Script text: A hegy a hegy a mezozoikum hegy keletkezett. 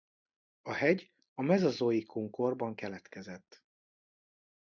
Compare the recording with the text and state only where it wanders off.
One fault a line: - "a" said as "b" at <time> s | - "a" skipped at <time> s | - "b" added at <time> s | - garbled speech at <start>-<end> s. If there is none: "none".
- "hegy a" skipped at 1.4 s
- "hegy" said as "korban" at 2.3 s